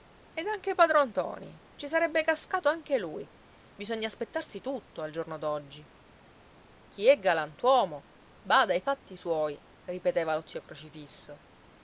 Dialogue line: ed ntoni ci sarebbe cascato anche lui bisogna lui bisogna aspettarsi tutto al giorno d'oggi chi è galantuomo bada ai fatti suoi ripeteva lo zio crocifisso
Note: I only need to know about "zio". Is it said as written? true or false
true